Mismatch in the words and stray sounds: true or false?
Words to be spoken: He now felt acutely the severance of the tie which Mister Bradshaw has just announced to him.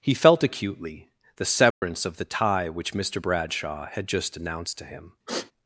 true